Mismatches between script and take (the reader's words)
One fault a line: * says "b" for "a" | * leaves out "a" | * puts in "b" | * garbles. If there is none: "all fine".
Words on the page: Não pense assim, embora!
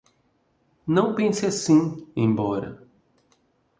all fine